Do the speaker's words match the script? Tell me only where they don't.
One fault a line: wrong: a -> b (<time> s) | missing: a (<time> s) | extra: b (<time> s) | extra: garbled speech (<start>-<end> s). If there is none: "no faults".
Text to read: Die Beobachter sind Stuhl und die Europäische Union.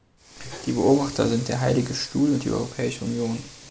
extra: der Heilige (1.5 s)